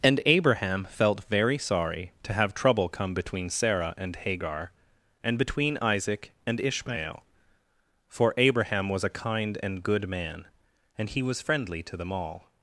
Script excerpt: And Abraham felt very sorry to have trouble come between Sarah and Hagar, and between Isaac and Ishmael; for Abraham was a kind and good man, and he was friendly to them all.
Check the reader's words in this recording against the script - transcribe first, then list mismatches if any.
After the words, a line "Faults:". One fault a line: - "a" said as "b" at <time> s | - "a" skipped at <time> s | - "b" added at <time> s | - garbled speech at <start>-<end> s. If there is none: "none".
And Abraham felt very sorry to have trouble come between Sarah and Hagar, and between Isaac and Ishmael; for Abraham was a kind and good man, and he was friendly to them all.
Faults:
none